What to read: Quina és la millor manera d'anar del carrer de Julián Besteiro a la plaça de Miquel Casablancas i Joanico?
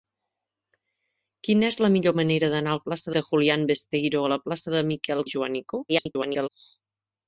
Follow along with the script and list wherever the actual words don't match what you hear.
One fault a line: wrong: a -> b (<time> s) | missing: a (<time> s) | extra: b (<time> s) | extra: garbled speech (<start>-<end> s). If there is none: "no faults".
wrong: carrer -> plaça (2.9 s)
missing: Casablancas (5.2 s)
extra: garbled speech (5.9-6.5 s)